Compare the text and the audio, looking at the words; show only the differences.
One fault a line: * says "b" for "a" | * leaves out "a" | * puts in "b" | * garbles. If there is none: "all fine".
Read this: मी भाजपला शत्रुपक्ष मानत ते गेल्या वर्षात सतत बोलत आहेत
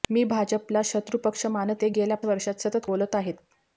all fine